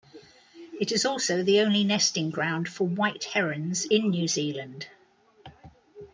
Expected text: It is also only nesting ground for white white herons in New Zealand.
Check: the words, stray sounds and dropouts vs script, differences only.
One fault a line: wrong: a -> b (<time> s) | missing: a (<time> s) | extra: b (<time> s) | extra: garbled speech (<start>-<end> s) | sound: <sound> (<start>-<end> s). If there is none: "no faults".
extra: the (1.4 s)
missing: white (3.2 s)